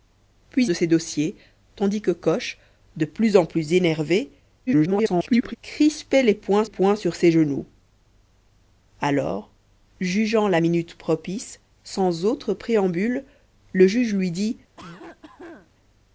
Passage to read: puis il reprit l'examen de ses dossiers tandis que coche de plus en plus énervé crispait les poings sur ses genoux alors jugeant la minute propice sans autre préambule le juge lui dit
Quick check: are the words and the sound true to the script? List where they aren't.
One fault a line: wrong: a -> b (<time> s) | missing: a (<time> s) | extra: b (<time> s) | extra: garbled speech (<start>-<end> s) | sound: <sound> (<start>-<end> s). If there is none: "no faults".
missing: il reprit l'examen (0.7 s)
extra: garbled speech (4.7-5.6 s)
extra: poings (6.6 s)
sound: cough (14.8-15.7 s)